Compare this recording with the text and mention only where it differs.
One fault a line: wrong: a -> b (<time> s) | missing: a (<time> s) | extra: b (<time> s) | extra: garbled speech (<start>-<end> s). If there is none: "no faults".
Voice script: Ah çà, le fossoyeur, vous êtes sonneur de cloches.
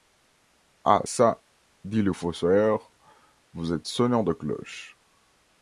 extra: dit (1.8 s)